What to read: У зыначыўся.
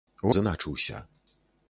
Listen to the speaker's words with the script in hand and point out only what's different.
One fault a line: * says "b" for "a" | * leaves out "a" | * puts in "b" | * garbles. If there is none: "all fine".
all fine